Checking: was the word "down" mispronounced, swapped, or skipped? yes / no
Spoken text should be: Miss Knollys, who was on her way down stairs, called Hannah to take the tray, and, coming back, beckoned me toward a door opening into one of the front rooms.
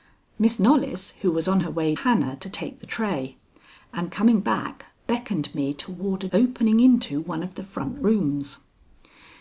yes